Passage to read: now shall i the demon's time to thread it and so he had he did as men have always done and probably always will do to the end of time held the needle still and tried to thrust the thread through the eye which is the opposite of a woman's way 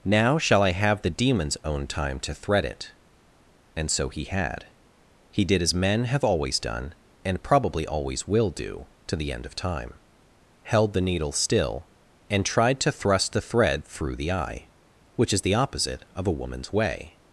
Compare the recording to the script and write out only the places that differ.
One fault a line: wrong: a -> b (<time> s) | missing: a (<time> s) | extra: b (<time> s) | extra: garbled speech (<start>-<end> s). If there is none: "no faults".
extra: have (0.7 s)
extra: own (1.6 s)